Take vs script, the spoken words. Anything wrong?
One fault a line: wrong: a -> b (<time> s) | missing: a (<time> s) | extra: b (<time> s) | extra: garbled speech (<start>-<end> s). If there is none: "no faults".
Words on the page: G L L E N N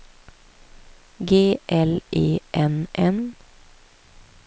missing: L (2.0 s)